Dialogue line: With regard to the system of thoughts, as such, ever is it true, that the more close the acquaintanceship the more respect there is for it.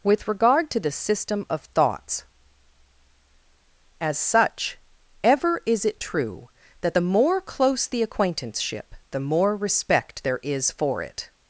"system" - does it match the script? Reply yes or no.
yes